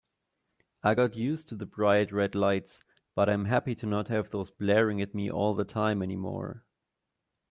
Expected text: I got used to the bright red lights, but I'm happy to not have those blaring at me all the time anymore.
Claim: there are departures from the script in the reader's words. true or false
false